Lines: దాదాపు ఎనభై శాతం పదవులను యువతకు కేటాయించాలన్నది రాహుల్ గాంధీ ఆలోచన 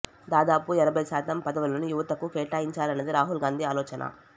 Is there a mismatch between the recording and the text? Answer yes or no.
no